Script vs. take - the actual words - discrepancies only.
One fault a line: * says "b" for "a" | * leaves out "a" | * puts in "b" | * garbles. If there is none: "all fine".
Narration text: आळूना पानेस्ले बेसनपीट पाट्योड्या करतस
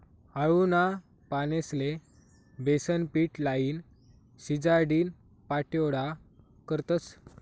* puts in "लाईन शिजाडीन"